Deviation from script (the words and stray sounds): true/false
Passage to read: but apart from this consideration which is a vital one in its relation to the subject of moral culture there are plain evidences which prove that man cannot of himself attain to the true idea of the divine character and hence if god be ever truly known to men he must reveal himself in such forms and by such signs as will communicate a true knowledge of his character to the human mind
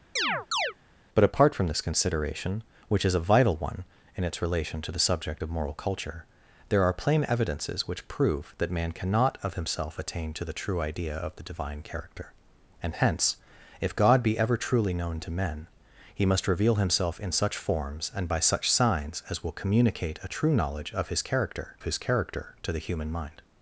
true